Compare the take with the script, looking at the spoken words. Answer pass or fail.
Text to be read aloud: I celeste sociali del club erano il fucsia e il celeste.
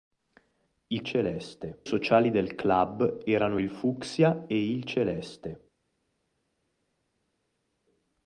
pass